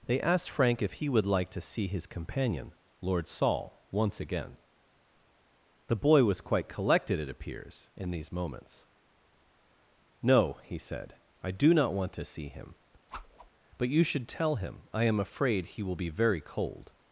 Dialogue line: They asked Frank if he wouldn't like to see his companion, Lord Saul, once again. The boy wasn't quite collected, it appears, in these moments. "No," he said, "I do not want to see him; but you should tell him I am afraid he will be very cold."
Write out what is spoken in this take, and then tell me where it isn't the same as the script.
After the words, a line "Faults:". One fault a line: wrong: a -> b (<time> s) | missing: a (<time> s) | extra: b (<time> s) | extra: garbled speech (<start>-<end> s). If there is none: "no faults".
They asked Frank if he would like to see his companion, Lord Saul, once again. The boy was quite collected, it appears, in these moments. "No," he said, "I do not want to see him; but you should tell him I am afraid he will be very cold."
Faults:
wrong: wouldn't -> would (1.1 s)
wrong: wasn't -> was (6.2 s)